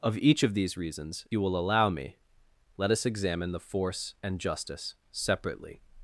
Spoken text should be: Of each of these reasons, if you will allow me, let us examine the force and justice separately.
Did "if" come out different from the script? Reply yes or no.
yes